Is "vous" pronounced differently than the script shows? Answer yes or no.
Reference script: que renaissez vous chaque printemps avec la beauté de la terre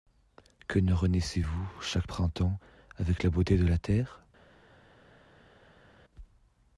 no